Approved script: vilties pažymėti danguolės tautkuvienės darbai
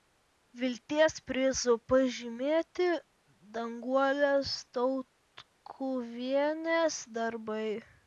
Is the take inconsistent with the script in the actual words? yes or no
yes